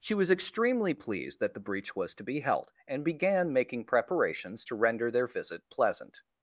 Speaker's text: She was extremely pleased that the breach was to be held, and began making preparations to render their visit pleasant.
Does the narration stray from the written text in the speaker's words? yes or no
no